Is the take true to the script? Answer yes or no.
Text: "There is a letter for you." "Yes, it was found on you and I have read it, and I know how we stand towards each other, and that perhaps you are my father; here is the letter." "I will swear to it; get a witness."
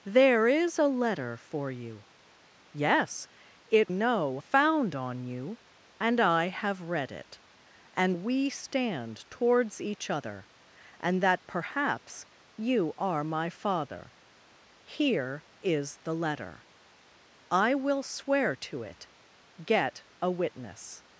no